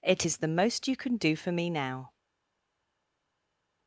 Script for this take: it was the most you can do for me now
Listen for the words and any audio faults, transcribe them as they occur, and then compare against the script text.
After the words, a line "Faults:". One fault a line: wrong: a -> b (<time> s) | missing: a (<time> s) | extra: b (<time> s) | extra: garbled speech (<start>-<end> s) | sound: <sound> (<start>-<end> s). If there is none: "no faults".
it is the most you can do for me now
Faults:
wrong: was -> is (0.2 s)